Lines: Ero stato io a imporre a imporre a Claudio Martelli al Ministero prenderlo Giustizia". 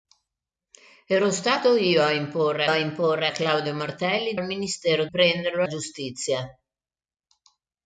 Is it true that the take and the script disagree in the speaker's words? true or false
false